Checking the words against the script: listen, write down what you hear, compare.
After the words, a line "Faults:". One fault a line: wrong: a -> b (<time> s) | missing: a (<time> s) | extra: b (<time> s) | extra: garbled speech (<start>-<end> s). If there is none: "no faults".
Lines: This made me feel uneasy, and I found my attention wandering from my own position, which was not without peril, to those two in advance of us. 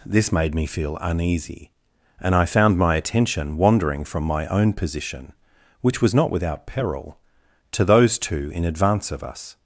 This made me feel uneasy, and I found my attention wandering from my own position, which was not without peril, to those two in advance of us.
Faults:
no faults